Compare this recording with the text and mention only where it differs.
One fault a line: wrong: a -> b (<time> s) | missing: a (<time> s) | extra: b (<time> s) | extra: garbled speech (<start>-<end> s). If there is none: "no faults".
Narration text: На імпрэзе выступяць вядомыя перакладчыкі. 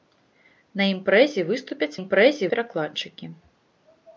wrong: вядомыя -> імпрэзе (2.0 s)